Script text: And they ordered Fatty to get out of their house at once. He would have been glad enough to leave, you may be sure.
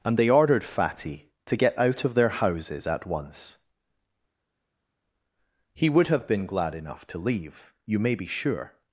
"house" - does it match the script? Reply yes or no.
no